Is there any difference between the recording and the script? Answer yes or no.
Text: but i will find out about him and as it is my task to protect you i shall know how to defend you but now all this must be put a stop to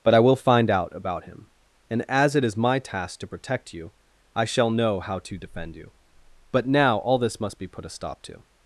no